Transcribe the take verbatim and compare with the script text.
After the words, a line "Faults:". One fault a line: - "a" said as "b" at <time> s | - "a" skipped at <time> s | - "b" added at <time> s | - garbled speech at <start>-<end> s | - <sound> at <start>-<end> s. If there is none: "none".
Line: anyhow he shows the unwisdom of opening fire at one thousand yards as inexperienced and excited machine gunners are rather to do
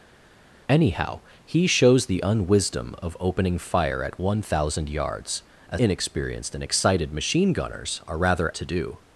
anyhow he shows the unwisdom of opening fire at one thousand yards as inexperienced and excited machine gunners are rather to do
Faults:
none